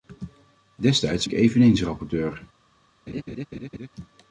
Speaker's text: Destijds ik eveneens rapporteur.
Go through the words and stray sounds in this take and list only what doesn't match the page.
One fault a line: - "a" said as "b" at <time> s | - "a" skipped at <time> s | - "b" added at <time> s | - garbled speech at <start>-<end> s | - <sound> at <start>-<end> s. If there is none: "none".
- laugh at 3.1-3.9 s